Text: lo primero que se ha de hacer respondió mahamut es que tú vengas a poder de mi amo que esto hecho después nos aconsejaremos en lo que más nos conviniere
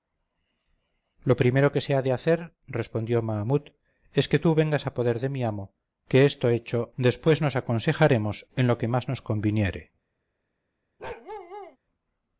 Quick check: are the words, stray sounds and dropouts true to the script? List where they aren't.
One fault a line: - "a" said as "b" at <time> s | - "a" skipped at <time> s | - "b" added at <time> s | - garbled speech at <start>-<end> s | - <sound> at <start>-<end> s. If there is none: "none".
- bark at 11.0-11.8 s